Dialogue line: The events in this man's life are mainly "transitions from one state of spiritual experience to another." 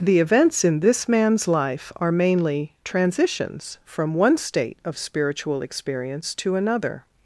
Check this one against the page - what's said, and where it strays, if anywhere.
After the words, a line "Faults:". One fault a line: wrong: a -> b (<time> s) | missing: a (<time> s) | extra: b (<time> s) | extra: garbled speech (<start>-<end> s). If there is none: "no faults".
The events in this man's life are mainly "transitions from one state of spiritual experience to another."
Faults:
no faults